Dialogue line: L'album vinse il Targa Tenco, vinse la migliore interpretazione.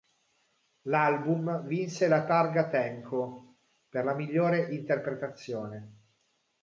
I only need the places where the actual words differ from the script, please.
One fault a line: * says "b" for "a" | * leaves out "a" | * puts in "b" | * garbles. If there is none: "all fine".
* says "la" for "il"
* says "per" for "vinse"